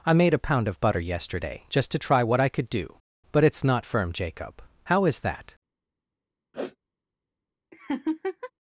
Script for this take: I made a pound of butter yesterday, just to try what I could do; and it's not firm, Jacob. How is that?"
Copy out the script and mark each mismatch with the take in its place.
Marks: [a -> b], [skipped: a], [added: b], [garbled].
I made a pound of butter yesterday, just to try what I could do; [and -> but] it's not firm, Jacob. How is that?"